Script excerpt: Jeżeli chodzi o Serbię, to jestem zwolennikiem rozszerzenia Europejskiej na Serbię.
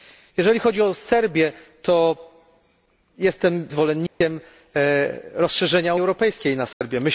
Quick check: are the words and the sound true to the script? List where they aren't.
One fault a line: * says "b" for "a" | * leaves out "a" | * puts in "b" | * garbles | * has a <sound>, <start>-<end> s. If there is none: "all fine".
* has a dropout, 4.1-4.2 s
* has a dropout, 6.7-6.8 s